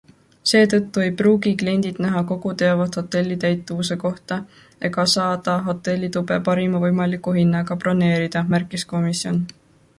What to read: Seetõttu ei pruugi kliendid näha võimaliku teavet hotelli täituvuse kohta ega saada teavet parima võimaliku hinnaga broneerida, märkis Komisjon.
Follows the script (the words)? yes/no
no